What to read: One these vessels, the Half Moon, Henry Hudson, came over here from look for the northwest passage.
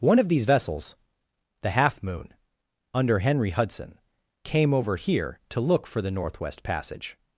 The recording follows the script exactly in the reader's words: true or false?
false